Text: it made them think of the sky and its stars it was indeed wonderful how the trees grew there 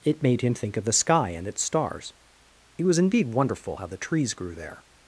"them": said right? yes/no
no